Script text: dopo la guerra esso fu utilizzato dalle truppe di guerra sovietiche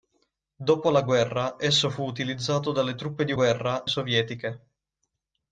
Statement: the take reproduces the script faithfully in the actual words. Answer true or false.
true